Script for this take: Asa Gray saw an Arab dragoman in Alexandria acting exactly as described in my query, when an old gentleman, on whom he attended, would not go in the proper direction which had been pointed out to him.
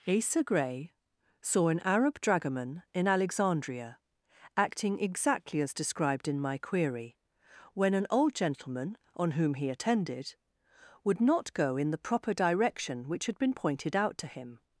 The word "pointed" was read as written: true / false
true